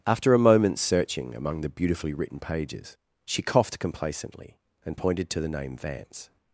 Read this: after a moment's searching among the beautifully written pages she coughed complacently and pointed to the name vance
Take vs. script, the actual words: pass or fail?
pass